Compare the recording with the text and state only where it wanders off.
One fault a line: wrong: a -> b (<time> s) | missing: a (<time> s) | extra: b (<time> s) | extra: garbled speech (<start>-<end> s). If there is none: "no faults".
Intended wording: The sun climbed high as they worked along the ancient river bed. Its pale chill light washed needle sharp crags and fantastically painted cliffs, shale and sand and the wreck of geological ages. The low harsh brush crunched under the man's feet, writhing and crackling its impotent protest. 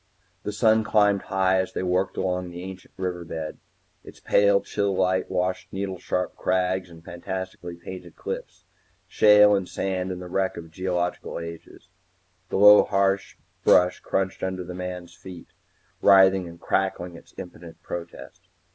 no faults